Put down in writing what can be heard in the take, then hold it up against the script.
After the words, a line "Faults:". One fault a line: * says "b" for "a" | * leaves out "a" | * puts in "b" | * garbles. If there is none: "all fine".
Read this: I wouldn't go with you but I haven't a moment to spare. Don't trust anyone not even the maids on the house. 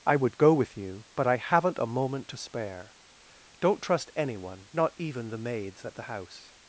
I would go with you but I haven't a moment to spare. Don't trust anyone not even the maids at the house.
Faults:
* says "would" for "wouldn't"
* says "at" for "on"